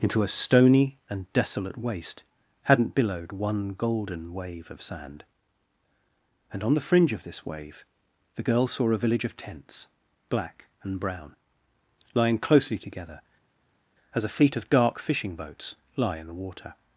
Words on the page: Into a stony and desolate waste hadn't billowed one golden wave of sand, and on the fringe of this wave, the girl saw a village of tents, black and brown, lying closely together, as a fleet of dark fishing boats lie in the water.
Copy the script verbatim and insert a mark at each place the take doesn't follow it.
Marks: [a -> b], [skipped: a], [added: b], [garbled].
Into a stony and desolate waste hadn't billowed one golden wave of sand, and on the fringe of this wave, the girl saw a village of tents, black and brown, lying closely together, as a fleet of dark fishing boats lie in the water.